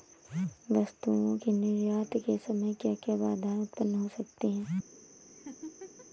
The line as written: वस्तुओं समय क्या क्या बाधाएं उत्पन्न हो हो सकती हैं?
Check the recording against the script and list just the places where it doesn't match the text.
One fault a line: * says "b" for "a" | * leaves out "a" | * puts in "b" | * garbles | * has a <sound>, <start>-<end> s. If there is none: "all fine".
* puts in "के निर्यात के"
* leaves out "हो"
* has a laugh, 5.3-6.1 s